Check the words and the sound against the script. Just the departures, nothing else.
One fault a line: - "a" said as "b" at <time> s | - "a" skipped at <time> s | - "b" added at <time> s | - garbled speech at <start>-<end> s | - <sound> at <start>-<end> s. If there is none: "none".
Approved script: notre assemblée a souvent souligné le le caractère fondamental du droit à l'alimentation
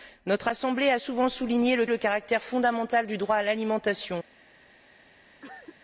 - cough at 5.4-5.8 s